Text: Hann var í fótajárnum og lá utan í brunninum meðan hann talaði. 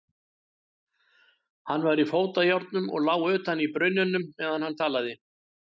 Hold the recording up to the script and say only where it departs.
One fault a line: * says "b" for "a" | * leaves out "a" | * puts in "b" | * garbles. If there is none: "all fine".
all fine